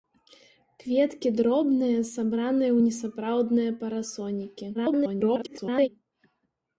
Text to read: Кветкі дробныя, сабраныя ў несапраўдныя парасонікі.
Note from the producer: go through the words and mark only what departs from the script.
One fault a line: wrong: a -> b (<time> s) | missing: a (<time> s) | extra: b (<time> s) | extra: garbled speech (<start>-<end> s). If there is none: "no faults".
extra: garbled speech (4.7-5.9 s)